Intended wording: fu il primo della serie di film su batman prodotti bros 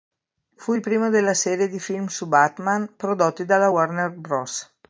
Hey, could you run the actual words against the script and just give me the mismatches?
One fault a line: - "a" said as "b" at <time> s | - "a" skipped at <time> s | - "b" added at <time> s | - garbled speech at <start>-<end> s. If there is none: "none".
- "dalla warner" added at 3.5 s